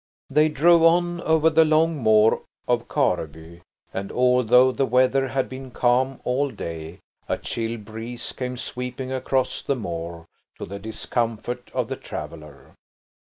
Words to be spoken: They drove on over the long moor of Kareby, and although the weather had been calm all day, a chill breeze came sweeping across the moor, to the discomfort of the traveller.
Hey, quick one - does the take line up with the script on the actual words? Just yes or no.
yes